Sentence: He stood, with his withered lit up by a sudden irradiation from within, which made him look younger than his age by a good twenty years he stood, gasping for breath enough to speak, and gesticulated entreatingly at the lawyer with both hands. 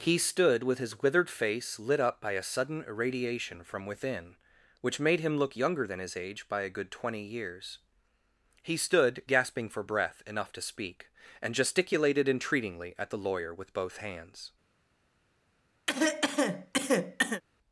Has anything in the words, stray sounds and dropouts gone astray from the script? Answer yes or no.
yes